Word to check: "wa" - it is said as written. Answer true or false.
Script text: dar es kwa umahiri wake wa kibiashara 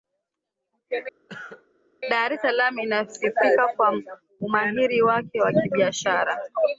true